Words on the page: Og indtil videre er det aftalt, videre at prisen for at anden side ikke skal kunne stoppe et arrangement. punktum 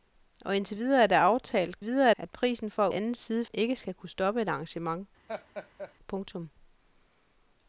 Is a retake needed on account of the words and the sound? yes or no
yes